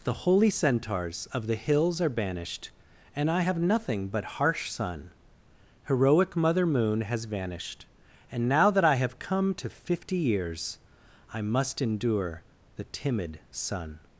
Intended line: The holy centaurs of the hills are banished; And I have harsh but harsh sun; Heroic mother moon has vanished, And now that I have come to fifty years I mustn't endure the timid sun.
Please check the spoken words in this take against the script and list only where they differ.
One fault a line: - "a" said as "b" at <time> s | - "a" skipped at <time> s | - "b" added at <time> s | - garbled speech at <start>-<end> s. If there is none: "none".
- "harsh" said as "nothing" at 3.6 s
- "mustn't" said as "must" at 11.4 s